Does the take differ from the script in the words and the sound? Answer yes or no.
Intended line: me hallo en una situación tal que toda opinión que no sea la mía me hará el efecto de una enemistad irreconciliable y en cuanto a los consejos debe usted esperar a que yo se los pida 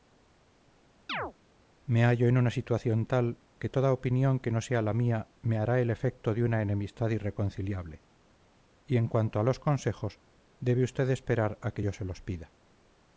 yes